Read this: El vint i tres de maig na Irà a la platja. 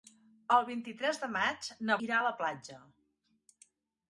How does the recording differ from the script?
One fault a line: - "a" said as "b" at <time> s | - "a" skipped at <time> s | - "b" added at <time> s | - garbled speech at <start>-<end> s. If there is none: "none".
none